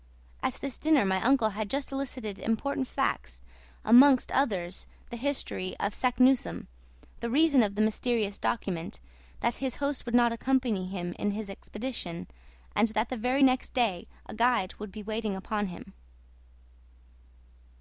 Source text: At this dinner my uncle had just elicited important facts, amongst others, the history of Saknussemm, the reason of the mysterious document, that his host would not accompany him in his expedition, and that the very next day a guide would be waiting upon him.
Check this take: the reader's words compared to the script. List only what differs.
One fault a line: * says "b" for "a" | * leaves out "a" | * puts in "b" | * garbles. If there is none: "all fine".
all fine